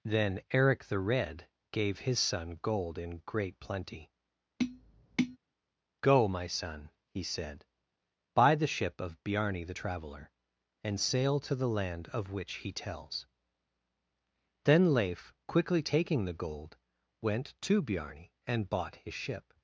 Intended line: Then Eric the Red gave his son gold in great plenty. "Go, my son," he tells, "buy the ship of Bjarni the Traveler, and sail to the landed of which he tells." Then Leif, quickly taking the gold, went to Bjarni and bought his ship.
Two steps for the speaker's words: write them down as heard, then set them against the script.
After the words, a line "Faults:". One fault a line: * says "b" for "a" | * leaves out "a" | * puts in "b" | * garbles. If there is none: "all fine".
Then Eric the Red gave his son gold in great plenty. "Go, my son," he said, "buy the ship of Bjarni the Traveler, and sail to the land of which he tells." Then Leif, quickly taking the gold, went to Bjarni and bought his ship.
Faults:
* says "said" for "tells"
* says "land" for "landed"